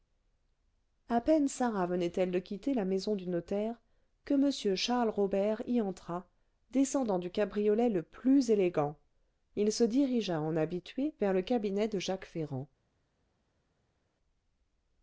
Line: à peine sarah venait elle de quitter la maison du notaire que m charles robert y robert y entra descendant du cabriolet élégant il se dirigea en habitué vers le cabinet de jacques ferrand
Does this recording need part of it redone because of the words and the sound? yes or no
yes